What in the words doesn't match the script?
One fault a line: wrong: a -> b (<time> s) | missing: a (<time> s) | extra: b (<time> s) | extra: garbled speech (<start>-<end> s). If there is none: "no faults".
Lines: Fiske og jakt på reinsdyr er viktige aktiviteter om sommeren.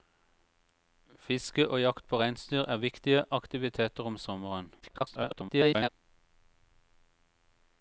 extra: garbled speech (4.8-5.9 s)